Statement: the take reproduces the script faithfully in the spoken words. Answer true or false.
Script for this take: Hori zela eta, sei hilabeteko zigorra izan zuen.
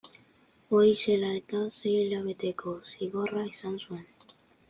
true